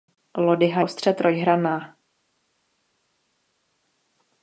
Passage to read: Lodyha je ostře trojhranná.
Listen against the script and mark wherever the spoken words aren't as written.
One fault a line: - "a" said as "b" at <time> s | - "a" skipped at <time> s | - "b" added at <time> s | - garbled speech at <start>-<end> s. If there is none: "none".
- "je" skipped at 0.8 s